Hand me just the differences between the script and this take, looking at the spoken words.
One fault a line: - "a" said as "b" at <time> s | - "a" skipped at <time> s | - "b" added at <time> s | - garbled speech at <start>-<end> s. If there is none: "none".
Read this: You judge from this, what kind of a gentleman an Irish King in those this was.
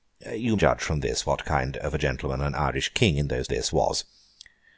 none